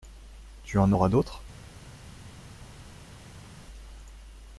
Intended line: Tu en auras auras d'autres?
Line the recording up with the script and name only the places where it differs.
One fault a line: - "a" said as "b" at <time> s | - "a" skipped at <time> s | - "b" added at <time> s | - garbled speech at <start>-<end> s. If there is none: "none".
- "auras" skipped at 1.1 s